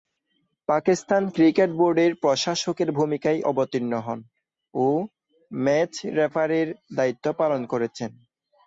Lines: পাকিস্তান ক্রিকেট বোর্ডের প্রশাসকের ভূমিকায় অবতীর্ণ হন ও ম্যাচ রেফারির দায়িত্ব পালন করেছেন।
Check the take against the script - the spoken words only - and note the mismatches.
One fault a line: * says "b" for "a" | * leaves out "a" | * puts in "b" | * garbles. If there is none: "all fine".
all fine